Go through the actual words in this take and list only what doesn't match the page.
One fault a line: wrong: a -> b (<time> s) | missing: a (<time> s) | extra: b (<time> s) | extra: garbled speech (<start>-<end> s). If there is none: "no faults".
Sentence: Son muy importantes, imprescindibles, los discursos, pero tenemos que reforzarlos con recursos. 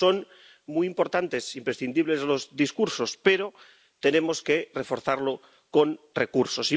no faults